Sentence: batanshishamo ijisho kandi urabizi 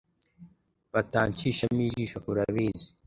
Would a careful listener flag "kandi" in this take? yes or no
yes